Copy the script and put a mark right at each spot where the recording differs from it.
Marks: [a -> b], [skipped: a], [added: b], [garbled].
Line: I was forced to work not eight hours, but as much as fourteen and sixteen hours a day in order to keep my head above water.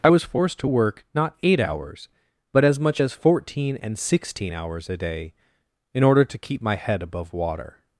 I was forced to work not eight hours, but as much as fourteen and sixteen hours a day in order to keep my head above water.